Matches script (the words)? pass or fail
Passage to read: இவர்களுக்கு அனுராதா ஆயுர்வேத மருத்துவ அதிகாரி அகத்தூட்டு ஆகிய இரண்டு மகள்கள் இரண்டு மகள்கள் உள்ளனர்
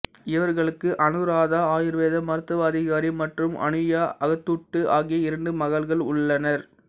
fail